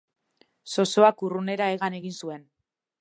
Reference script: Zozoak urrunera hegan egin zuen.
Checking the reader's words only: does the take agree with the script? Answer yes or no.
yes